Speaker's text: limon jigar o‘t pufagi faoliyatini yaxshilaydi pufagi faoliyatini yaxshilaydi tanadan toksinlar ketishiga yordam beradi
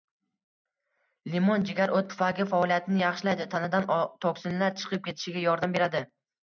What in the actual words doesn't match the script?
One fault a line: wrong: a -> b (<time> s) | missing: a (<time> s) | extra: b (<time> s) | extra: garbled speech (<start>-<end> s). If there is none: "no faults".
missing: pufagi faoliyatini yaxshilaydi (3.5 s)
extra: chiqib (4.8 s)